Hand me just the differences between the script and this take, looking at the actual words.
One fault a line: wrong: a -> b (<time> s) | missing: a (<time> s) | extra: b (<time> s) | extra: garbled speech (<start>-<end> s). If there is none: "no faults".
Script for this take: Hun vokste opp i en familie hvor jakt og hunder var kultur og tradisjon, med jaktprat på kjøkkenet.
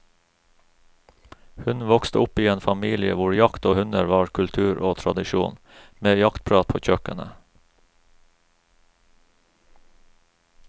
no faults